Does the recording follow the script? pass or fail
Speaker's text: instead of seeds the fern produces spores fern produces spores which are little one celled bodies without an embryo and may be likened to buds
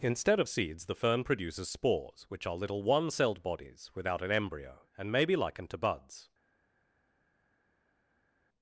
fail